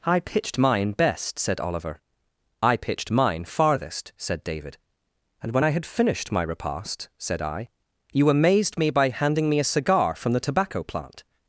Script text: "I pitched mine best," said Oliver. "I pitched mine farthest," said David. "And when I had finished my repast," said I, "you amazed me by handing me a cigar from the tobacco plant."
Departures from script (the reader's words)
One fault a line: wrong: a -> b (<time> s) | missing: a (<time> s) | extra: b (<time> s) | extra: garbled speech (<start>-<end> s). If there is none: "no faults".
no faults